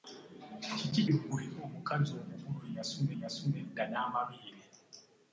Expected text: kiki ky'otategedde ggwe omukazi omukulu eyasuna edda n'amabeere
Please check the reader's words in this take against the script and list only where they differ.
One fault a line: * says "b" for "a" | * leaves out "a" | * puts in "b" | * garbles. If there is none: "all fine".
* leaves out "ky'otategedde"
* puts in "eyasuna"